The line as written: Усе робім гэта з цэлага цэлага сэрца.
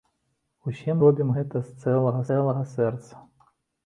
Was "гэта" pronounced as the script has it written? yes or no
yes